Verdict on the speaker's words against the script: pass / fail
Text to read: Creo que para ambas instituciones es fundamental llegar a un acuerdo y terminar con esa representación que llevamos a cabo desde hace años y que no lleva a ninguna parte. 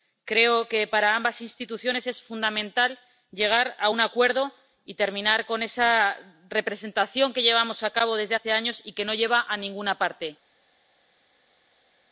pass